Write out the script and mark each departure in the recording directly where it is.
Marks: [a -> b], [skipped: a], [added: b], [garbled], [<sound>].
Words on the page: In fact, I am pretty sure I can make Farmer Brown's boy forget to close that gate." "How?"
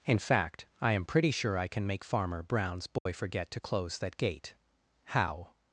In fact, I am pretty sure I can make Farmer Brown's boy [dropout] forget to close that gate." "How?"